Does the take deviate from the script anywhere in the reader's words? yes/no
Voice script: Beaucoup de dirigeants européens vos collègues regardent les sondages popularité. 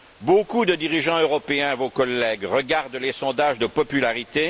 yes